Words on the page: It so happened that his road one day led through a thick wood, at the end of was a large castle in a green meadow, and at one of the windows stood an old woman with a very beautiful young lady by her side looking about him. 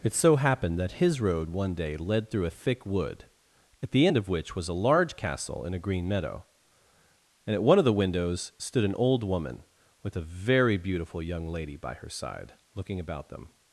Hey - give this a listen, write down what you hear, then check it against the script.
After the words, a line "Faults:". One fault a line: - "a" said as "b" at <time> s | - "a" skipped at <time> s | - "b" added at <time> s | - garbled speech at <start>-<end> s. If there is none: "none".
It so happened that his road one day led through a thick wood, at the end of which was a large castle in a green meadow, and at one of the windows stood an old woman with a very beautiful young lady by her side looking about them.
Faults:
- "which" added at 4.3 s
- "him" said as "them" at 13.3 s